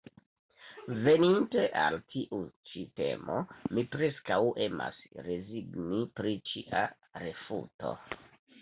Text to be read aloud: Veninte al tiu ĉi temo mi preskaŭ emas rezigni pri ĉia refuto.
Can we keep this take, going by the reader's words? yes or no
yes